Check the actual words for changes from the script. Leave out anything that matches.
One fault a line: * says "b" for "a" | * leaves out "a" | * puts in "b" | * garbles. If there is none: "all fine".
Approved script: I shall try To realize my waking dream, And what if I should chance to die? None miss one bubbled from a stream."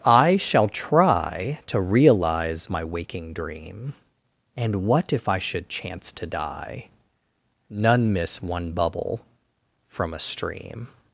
* says "bubble" for "bubbled"